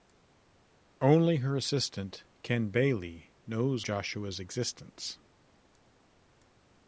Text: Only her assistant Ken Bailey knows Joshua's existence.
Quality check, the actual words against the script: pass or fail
pass